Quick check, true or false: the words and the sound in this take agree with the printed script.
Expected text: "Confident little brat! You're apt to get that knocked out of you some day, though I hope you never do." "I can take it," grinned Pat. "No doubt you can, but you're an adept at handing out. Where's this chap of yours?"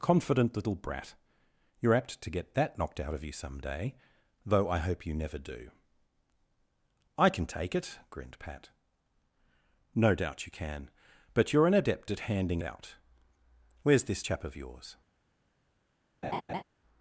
false